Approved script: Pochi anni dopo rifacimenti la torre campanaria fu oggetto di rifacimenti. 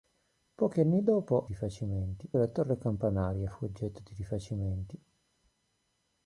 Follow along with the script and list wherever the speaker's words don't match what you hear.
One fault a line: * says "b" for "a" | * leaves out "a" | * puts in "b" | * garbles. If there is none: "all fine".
all fine